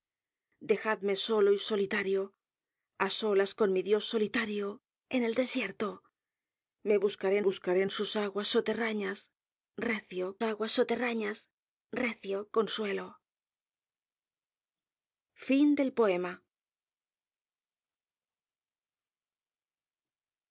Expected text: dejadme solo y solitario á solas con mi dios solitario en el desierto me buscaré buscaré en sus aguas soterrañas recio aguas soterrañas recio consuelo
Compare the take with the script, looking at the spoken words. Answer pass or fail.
pass